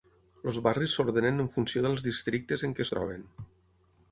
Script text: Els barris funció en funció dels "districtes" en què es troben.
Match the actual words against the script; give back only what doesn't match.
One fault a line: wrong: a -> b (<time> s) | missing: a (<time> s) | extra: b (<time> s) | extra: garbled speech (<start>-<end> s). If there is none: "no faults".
wrong: funció -> s'ordenen (1.0 s)